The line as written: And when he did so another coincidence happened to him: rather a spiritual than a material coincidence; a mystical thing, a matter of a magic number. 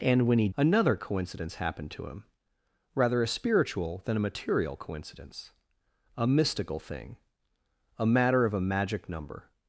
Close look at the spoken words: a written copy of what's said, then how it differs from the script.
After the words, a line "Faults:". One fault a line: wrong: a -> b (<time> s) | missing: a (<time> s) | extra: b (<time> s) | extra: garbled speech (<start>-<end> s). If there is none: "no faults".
And when he another coincidence happened to him: rather a spiritual than a material coincidence; a mystical thing, a matter of a magic number.
Faults:
missing: did so (0.5 s)